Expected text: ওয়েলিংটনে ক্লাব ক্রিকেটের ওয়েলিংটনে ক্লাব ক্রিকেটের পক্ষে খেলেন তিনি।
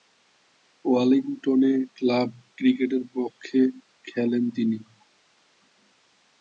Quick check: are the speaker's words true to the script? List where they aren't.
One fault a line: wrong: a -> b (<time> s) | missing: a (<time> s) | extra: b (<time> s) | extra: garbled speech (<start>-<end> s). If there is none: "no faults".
missing: ওয়েলিংটনে ক্লাব ক্রিকেটের (3.0 s)